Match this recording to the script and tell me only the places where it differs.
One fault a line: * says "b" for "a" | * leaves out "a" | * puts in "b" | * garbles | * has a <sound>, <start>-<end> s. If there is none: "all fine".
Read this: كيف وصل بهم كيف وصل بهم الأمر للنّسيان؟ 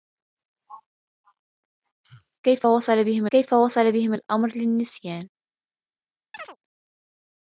* has a chirp, 6.3-6.6 s